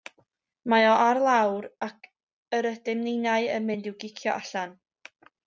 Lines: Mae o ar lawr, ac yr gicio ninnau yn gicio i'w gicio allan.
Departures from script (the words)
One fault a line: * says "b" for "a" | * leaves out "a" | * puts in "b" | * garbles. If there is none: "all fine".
* says "ydym" for "gicio"
* says "mynd" for "gicio"